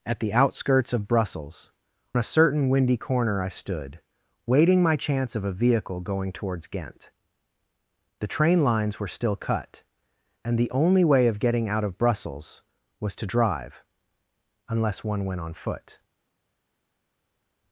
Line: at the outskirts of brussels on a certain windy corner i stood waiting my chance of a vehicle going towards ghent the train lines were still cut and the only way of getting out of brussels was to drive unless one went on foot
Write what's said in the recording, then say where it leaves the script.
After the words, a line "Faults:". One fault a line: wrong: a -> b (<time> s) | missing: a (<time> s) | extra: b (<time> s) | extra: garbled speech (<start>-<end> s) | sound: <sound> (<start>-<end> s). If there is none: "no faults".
at the outskirts of brussels a certain windy corner i stood waiting my chance of a vehicle going towards ghent the train lines were still cut and the only way of getting out of brussels was to drive unless one went on foot
Faults:
missing: on (1.7 s)